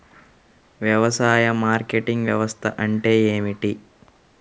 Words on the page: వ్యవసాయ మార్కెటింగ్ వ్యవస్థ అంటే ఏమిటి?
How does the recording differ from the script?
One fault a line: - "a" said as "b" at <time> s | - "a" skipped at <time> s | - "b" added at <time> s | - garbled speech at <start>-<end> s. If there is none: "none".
none